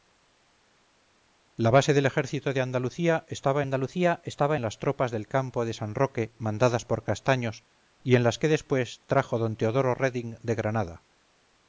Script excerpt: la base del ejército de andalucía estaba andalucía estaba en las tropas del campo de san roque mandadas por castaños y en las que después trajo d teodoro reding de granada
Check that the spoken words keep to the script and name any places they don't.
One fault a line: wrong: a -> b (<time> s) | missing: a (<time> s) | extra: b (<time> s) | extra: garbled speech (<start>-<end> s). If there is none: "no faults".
no faults